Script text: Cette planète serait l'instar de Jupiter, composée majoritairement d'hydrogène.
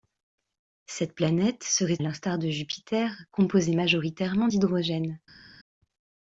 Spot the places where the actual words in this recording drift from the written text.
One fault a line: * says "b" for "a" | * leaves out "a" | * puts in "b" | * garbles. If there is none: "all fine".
all fine